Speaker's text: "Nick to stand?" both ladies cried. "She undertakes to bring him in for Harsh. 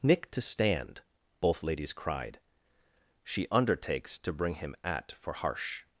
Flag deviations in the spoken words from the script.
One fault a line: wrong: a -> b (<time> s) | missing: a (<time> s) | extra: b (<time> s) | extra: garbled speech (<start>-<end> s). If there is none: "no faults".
wrong: in -> at (4.8 s)